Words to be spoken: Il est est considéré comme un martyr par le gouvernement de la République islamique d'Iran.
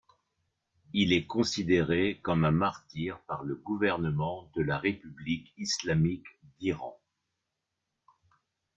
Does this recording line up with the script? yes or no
no